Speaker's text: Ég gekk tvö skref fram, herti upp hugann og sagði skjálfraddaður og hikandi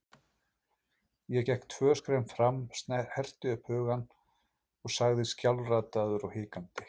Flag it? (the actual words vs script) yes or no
no